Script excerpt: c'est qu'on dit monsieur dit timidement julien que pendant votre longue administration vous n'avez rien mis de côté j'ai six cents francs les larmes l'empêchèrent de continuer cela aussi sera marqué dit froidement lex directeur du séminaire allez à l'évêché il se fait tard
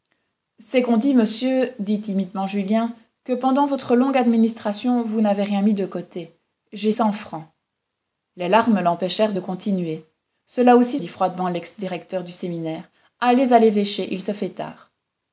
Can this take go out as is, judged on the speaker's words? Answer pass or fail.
fail